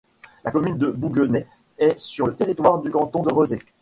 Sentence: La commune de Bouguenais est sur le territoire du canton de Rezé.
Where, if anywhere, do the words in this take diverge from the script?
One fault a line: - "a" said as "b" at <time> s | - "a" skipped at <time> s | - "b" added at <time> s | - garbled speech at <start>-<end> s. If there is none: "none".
none